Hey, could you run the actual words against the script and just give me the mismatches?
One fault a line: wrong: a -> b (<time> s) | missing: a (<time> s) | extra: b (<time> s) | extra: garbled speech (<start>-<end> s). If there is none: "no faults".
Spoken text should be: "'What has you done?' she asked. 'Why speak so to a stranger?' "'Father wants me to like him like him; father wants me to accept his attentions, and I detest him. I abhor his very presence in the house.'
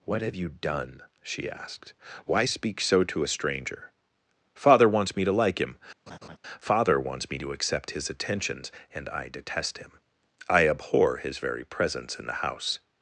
wrong: has -> have (0.2 s)
missing: like him (5.8 s)